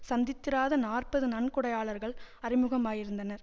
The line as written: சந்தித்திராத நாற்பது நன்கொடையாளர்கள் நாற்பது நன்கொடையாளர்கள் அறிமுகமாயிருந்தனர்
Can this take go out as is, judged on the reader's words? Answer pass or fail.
fail